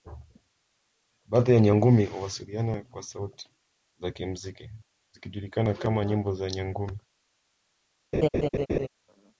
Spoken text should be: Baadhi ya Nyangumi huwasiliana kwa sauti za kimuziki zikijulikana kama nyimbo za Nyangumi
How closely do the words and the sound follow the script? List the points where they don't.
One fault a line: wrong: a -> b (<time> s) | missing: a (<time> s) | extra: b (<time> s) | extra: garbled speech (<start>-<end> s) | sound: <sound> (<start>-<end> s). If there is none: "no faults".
sound: laugh (8.1-8.9 s)